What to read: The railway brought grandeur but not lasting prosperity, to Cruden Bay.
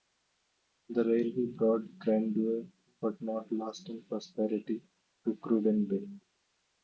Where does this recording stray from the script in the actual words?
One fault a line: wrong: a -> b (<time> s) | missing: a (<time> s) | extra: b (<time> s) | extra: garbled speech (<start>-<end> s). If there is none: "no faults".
no faults